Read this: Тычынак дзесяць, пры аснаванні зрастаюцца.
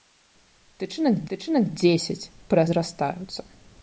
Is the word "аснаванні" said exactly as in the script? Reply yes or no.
no